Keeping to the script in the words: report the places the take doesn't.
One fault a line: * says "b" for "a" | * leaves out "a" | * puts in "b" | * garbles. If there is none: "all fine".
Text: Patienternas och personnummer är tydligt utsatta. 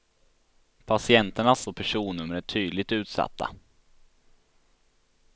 all fine